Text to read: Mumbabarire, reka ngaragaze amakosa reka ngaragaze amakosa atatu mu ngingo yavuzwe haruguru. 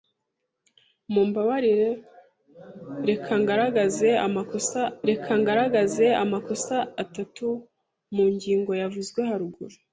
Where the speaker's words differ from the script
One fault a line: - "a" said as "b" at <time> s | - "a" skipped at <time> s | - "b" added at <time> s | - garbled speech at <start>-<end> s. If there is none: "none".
none